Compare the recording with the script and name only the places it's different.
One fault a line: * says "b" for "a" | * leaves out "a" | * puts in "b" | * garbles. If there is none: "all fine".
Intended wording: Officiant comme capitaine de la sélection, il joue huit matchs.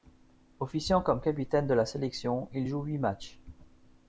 all fine